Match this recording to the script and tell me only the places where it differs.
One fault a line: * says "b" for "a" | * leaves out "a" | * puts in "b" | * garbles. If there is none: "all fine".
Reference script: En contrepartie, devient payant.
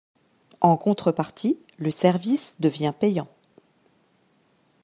* puts in "le service"